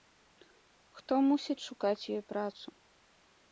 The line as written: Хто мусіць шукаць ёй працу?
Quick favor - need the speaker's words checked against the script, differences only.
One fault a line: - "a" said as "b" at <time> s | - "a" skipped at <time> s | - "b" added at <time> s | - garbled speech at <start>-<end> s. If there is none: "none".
none